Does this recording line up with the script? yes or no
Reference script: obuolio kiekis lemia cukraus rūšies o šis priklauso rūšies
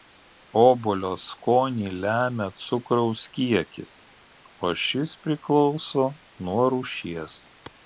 no